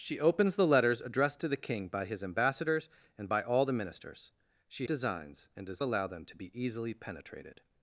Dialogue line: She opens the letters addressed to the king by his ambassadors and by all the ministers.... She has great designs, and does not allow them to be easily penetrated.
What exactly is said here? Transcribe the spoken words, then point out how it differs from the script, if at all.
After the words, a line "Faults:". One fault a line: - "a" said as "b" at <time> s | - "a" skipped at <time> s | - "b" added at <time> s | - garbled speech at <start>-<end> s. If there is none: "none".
She opens the letters addressed to the king by his ambassadors and by all the ministers.... She designs, and does allow them to be easily penetrated.
Faults:
- "has great" skipped at 4.9 s
- "not" skipped at 5.8 s